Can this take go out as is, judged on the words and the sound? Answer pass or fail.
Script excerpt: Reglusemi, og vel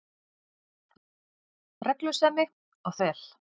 pass